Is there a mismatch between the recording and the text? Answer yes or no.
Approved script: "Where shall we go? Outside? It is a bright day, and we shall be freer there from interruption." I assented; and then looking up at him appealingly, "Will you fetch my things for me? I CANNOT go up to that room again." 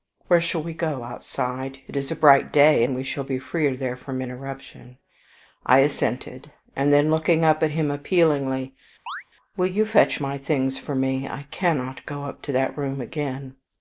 no